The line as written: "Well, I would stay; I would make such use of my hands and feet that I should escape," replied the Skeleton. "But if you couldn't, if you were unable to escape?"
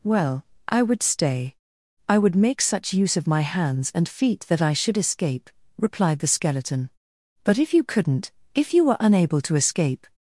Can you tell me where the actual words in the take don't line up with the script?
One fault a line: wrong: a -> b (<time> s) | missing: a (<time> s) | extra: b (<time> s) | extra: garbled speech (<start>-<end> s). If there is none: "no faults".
no faults